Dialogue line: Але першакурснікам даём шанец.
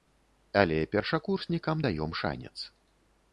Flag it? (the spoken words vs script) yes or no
no